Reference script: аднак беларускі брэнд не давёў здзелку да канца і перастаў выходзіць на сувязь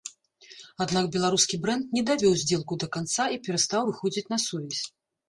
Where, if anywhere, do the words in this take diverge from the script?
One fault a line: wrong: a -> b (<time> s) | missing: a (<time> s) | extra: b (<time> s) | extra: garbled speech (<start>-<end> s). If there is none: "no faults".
no faults